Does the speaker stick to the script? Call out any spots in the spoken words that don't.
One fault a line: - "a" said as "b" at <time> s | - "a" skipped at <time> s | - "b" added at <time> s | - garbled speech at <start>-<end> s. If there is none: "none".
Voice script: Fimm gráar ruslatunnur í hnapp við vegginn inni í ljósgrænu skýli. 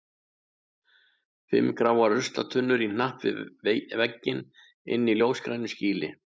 none